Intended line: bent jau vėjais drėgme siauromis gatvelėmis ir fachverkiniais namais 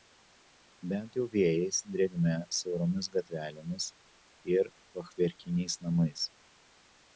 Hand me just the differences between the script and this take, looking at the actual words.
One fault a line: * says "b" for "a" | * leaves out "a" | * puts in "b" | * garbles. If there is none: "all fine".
all fine